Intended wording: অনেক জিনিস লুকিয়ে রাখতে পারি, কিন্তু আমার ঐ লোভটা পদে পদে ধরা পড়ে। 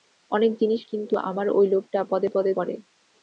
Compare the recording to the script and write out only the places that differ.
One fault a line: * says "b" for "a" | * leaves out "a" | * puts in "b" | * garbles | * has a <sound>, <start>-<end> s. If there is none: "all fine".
* leaves out "লুকিয়ে রাখতে পারি"
* leaves out "ধরা"